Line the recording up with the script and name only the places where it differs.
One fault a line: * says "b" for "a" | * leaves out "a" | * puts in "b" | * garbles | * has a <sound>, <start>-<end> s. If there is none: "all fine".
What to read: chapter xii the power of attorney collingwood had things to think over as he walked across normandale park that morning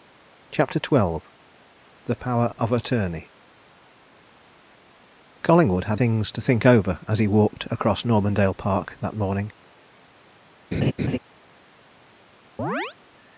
* has a laugh, 10.7-11.2 s
* has a chirp, 12.6-13.0 s